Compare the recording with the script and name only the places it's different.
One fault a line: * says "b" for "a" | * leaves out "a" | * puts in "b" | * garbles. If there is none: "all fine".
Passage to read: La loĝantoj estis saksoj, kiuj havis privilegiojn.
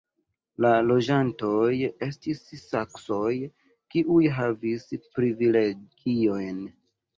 all fine